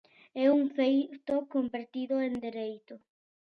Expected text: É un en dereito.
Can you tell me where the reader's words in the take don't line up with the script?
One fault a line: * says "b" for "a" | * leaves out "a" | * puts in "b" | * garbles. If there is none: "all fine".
* puts in "feito convertido"